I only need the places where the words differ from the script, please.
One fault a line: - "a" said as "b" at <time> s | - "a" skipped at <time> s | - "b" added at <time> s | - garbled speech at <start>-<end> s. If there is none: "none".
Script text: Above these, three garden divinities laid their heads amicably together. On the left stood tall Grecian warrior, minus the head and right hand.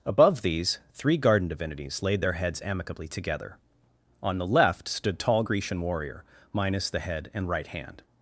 none